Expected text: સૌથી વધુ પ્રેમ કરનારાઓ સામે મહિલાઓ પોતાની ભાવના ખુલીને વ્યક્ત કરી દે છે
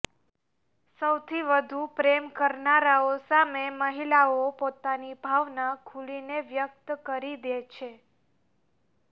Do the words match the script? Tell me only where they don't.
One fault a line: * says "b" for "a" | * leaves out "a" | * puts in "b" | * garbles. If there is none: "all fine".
all fine